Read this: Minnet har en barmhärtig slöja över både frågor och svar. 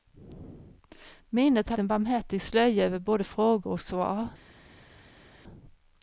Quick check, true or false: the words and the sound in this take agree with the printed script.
true